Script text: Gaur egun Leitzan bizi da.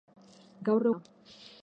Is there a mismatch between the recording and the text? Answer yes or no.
yes